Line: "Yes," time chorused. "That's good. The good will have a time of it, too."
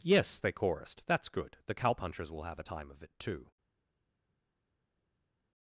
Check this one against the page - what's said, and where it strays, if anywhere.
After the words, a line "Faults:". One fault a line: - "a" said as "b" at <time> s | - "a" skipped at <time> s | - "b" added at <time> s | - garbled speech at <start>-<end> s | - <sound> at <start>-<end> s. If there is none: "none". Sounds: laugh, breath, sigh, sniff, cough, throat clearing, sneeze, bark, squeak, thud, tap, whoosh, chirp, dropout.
"Yes," they chorused. "That's good. The cowpunchers will have a time of it, too."
Faults:
- "time" said as "they" at 0.4 s
- "good" said as "cowpunchers" at 1.8 s